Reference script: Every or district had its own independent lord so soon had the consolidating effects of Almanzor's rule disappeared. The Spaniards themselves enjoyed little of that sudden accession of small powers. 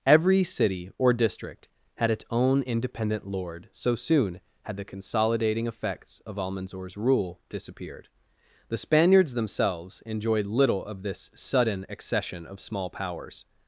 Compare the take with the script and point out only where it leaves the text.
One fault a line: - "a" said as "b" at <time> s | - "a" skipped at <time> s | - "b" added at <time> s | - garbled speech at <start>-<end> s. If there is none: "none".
- "city" added at 0.4 s
- "that" said as "this" at 11.0 s